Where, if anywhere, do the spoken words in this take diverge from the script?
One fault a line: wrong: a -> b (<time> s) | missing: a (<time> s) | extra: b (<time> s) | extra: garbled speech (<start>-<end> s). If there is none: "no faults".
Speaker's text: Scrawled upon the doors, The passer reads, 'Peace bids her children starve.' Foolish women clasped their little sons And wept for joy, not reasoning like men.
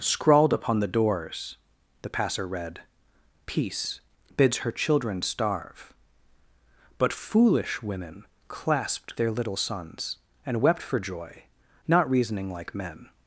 wrong: reads -> read (2.5 s)
extra: But (7.0 s)